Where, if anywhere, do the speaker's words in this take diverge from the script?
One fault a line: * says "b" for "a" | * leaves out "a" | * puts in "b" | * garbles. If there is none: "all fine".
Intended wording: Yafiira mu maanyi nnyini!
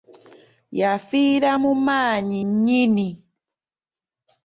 all fine